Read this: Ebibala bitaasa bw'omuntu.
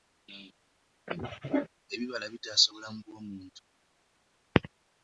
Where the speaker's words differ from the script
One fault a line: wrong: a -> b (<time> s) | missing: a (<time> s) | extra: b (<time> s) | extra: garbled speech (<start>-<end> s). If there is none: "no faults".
extra: obulamu (2.7 s)